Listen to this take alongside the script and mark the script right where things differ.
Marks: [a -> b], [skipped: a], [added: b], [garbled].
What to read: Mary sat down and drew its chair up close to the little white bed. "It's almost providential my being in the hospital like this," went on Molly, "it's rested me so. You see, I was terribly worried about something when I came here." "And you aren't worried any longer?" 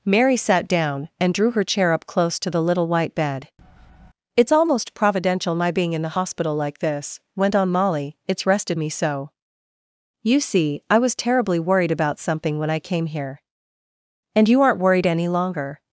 Mary sat down and drew [its -> her] chair up close to the little white bed. "It's almost providential my being in the hospital like this," went on Molly, "it's rested me so. You see, I was terribly worried about something when I came here." "And you aren't worried any longer?"